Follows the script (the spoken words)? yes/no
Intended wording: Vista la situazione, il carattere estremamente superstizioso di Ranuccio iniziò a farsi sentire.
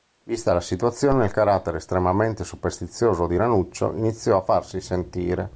yes